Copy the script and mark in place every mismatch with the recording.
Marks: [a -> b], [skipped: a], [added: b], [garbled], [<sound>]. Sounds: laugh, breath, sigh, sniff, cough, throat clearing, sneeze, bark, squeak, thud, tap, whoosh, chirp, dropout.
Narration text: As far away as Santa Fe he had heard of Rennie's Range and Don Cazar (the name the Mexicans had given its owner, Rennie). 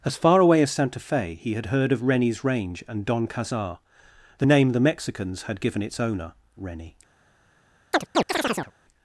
As far away as Santa Fe he had heard of Rennie's Range and Don Cazar (the name the Mexicans had given its owner, Rennie). [chirp]